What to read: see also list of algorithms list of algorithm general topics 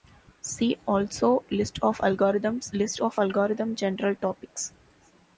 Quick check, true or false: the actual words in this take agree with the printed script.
true